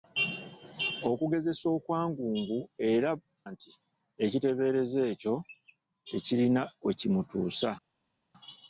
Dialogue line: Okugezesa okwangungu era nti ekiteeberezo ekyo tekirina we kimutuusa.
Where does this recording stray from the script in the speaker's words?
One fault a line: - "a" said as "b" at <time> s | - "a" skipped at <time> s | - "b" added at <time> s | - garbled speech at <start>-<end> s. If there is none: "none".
none